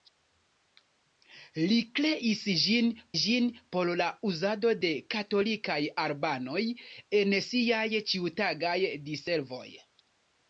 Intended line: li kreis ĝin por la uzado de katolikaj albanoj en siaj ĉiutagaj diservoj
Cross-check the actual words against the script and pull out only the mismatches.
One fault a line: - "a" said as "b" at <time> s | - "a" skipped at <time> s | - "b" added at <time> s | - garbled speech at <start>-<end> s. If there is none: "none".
- "ĝin" added at 3.2 s